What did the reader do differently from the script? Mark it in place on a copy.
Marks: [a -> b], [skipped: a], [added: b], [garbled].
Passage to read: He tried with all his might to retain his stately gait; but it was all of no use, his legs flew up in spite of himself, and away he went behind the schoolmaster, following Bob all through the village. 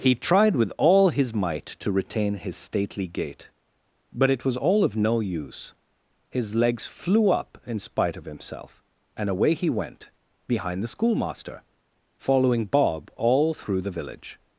He tried with all his might to retain his stately gait; but it was all of no use, his legs flew up in spite of himself, and away he went behind the schoolmaster, following Bob all through the village.